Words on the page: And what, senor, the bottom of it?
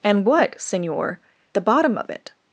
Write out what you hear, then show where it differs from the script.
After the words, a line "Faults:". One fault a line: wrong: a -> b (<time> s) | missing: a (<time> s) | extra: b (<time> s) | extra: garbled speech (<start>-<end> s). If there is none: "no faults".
And what, senor, the bottom of it?
Faults:
no faults